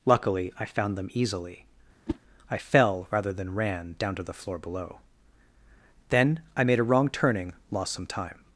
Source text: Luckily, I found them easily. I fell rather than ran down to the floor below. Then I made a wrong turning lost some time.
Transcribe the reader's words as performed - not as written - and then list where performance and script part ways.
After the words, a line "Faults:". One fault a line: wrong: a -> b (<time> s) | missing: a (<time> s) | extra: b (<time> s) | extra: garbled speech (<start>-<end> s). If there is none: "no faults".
Luckily, I found them easily. I fell rather than ran down to the floor below. Then I made a wrong turning lost some time.
Faults:
no faults